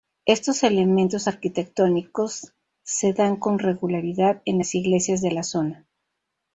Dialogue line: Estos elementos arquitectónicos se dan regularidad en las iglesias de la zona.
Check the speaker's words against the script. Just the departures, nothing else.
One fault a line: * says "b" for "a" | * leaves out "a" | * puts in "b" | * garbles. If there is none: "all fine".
* puts in "con"